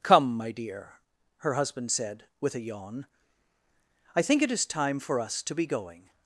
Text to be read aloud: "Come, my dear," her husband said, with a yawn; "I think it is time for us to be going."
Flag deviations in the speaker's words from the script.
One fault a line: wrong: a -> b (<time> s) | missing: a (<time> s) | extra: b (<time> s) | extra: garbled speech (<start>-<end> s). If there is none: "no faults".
no faults